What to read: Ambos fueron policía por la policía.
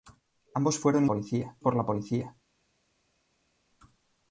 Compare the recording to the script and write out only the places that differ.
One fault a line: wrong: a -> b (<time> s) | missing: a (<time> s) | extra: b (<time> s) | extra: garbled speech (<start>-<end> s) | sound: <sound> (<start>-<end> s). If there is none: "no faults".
no faults